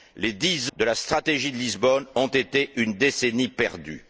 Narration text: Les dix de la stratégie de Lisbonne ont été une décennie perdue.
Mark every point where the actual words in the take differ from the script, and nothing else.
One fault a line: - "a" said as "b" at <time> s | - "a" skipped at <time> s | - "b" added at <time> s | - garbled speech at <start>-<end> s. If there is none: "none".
none